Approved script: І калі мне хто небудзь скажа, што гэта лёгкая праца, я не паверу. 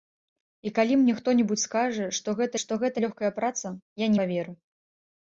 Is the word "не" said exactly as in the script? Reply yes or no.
no